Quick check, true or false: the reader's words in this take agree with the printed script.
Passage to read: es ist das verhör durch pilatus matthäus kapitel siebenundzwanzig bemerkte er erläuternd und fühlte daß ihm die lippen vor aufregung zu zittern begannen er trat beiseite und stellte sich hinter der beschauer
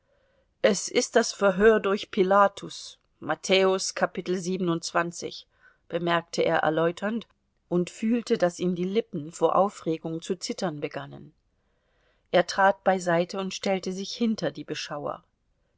false